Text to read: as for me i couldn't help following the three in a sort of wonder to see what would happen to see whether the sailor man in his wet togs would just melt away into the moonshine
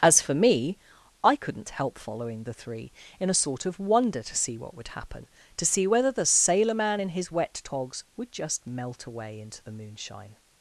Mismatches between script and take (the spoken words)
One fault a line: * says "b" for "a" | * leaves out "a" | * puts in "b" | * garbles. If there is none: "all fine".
all fine